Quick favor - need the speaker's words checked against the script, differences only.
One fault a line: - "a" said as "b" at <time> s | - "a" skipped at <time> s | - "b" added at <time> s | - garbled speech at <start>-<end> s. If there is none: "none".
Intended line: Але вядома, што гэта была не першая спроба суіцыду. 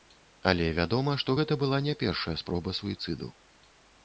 none